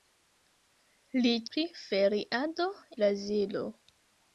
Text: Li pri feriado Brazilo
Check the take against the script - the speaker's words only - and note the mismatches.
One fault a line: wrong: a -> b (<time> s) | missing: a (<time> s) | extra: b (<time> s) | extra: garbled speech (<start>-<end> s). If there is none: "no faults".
no faults